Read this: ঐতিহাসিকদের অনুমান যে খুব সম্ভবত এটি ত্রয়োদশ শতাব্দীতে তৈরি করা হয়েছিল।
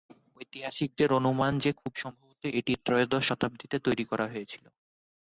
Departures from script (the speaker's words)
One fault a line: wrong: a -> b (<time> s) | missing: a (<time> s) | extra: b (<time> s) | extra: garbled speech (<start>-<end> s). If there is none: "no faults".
no faults